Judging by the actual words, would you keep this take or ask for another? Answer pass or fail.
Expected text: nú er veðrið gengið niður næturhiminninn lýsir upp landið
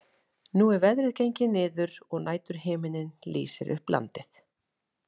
fail